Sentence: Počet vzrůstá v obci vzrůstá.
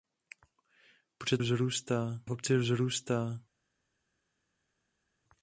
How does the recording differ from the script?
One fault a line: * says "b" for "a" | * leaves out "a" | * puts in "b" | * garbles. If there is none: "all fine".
all fine